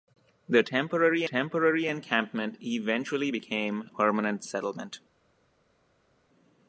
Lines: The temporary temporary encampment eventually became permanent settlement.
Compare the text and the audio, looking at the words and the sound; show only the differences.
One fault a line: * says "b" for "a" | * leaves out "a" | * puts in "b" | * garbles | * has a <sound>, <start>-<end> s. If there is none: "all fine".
all fine